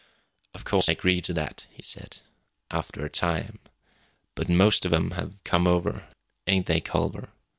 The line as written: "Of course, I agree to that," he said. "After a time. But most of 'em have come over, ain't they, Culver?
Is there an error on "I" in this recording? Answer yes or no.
yes